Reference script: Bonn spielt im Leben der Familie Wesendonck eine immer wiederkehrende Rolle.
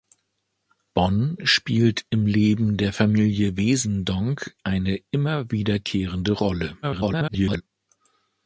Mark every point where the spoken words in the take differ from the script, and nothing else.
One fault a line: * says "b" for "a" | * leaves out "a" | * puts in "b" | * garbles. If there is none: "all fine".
* garbles